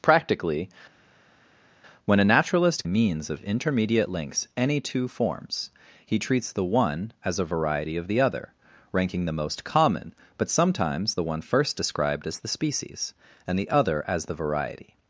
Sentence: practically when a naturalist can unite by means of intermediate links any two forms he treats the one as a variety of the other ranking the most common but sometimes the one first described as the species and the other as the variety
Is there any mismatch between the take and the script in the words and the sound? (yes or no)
yes